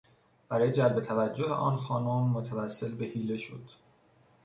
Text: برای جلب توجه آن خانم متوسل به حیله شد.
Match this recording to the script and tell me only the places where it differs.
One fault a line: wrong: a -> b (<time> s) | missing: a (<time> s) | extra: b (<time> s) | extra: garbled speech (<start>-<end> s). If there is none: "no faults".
no faults